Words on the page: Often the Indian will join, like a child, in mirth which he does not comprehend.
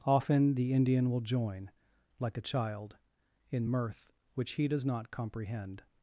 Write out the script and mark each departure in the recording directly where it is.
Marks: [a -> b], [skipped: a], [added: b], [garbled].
Often the Indian will join, like a child, in mirth which he does not comprehend.